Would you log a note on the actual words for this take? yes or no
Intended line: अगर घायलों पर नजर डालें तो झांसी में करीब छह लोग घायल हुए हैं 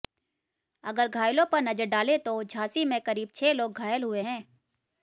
no